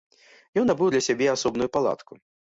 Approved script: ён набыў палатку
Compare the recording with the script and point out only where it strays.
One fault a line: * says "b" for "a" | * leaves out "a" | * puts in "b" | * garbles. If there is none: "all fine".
* puts in "для сябе асобную"